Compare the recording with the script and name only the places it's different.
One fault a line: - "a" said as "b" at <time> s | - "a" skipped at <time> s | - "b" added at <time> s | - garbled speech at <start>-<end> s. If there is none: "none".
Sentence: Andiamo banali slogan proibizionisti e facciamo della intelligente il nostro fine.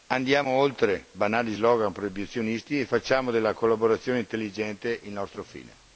- "oltre" added at 0.5 s
- "collaborazione" added at 3.5 s